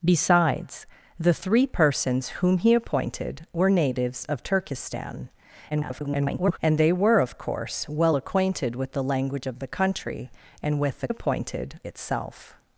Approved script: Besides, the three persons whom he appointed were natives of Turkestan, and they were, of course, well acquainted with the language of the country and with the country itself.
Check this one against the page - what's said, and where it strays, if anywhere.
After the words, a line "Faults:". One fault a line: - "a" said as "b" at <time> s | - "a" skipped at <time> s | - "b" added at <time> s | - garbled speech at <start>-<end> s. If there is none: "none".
Besides, the three persons whom he appointed were natives of Turkestan, [garbled] and they were, of course, well acquainted with the language of the country and with the appointed itself.
Faults:
- garbled speech at 5.7-6.6 s
- "country" said as "appointed" at 11.1 s